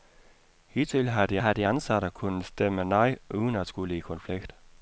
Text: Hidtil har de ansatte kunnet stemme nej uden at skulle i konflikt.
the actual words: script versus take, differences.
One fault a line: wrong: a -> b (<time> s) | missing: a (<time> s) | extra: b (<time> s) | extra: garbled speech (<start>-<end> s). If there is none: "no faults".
extra: har de (1.4 s)